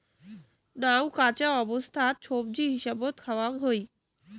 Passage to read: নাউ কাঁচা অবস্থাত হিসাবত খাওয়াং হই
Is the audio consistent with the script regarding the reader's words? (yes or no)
no